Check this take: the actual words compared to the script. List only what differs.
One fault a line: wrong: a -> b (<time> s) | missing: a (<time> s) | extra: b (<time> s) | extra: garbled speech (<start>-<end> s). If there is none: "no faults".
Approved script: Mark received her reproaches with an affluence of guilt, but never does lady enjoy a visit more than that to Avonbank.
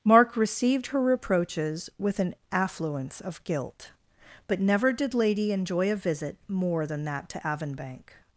wrong: does -> did (4.9 s)